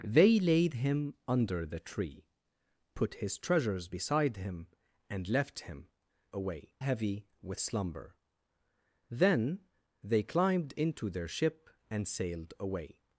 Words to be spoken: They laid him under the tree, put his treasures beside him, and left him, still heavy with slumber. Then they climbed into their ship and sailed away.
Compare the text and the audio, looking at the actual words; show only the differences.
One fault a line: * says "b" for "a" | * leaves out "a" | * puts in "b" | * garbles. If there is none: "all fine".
* says "away" for "still"